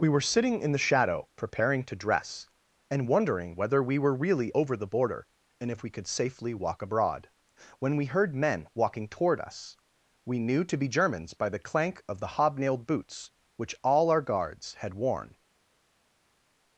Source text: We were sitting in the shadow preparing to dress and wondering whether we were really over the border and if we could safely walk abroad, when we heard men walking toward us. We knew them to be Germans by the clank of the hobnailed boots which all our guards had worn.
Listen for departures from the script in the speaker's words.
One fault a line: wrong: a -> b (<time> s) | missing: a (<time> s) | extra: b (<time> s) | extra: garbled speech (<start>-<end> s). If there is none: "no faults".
missing: them (10.6 s)